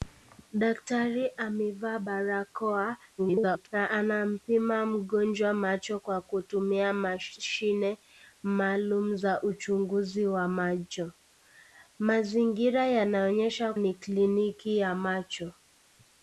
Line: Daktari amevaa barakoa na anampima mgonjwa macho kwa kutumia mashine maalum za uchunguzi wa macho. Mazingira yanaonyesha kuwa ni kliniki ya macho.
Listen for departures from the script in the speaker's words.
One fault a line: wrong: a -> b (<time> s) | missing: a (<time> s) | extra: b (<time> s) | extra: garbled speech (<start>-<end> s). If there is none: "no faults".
extra: garbled speech (3.2-3.7 s)
missing: kuwa (13.7 s)